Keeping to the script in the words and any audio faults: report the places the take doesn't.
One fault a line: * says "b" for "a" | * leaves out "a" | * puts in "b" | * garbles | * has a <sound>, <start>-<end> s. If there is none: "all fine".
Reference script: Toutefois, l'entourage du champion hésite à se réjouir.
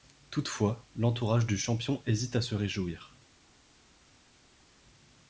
all fine